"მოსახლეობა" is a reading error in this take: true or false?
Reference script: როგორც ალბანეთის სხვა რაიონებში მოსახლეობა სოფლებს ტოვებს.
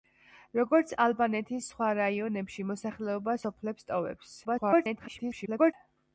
false